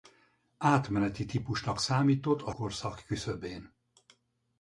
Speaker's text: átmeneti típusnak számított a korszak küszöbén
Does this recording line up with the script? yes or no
yes